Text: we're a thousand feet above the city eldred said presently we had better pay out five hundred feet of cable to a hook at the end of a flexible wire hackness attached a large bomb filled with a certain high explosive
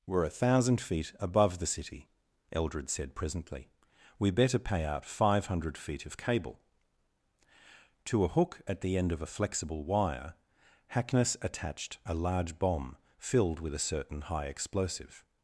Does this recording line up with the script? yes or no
no